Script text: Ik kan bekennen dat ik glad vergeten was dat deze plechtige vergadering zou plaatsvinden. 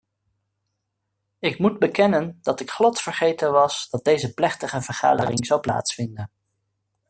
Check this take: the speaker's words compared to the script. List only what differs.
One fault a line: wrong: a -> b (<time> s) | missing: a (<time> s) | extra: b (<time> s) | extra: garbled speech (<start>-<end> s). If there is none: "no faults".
wrong: kan -> moet (1.6 s)